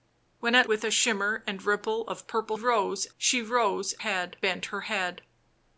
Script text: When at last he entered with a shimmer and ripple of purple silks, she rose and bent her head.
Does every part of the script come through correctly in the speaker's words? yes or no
no